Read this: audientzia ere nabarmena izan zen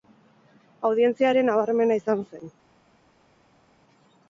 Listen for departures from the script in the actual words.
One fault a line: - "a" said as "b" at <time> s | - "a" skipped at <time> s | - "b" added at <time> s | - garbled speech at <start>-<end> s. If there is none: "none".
none